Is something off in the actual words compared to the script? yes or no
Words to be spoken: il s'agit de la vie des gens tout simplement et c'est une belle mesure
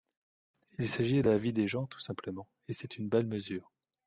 no